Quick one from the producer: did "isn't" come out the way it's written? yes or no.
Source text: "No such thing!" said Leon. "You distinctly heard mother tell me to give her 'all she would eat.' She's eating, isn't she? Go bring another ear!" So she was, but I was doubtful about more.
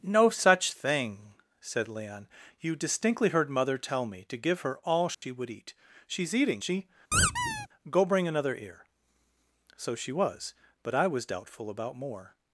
no